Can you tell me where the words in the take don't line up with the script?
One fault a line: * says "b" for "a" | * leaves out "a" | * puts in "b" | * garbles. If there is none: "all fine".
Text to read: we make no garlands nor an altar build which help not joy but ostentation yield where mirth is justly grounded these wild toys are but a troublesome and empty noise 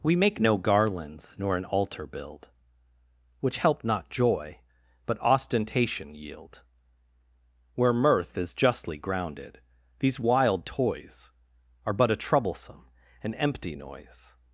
all fine